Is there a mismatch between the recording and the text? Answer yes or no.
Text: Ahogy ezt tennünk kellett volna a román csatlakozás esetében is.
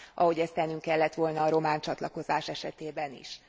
no